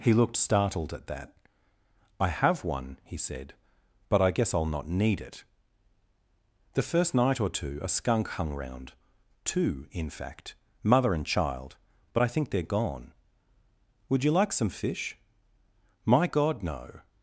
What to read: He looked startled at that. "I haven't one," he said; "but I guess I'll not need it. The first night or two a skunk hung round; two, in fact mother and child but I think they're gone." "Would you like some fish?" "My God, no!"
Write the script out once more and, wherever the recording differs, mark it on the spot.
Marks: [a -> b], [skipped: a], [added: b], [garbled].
He looked startled at that. "I [haven't -> have] one," he said; "but I guess I'll not need it. The first night or two a skunk hung round; two, in fact mother and child but I think they're gone." "Would you like some fish?" "My God, no!"